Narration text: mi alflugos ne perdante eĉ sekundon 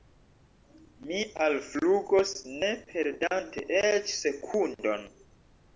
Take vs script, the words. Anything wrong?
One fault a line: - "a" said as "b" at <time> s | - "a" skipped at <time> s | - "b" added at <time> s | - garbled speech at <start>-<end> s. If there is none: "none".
none